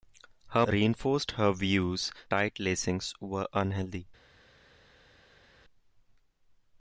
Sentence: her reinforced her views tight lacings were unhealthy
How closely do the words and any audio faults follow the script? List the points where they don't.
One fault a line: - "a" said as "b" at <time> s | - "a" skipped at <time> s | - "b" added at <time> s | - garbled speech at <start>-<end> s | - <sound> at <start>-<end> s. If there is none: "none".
none